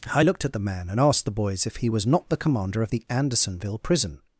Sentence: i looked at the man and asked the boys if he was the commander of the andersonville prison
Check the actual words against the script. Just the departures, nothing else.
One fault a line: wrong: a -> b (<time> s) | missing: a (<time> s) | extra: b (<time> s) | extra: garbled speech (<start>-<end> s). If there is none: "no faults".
extra: not (2.0 s)